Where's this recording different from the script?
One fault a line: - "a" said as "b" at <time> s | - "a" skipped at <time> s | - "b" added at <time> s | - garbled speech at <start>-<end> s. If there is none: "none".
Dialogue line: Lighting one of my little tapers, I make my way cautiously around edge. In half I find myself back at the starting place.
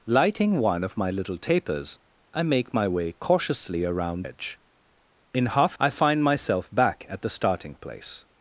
none